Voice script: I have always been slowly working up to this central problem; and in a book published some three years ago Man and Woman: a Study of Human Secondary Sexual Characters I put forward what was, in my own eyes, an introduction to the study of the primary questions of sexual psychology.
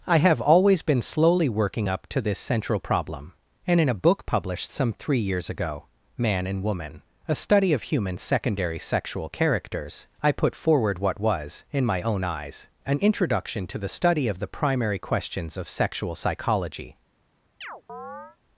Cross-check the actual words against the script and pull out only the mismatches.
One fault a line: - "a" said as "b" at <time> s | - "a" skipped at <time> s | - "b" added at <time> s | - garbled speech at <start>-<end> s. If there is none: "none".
none